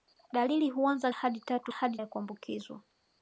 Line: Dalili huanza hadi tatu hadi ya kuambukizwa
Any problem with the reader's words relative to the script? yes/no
no